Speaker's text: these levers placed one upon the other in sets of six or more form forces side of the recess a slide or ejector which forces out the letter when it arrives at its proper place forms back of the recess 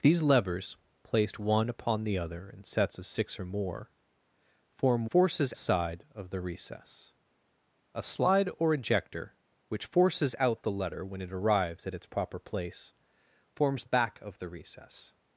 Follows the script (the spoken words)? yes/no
yes